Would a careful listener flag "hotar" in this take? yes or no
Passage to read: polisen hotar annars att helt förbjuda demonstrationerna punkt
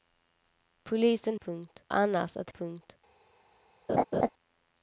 yes